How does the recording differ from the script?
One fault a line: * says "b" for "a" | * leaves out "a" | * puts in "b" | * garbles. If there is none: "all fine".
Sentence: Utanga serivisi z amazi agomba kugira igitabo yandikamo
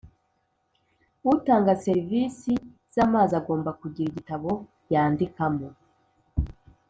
all fine